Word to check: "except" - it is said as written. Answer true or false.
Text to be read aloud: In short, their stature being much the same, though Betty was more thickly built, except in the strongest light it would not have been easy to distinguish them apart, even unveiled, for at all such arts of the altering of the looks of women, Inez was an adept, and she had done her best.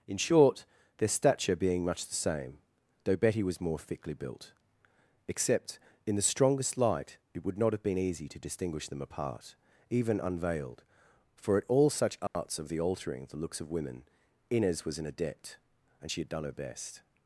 true